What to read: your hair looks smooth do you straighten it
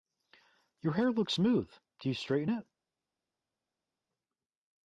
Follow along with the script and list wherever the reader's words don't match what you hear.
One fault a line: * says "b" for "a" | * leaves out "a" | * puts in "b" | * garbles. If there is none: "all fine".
all fine